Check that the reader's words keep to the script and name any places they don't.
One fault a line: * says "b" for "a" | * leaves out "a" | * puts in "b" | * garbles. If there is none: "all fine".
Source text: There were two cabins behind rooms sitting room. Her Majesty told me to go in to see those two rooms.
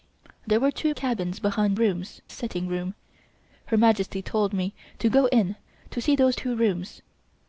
all fine